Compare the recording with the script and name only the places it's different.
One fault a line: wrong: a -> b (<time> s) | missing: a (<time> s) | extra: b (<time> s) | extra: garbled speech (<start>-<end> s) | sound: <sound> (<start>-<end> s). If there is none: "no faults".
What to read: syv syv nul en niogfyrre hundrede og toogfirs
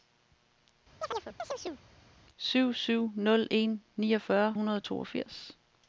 sound: chirp (1.0-1.8 s)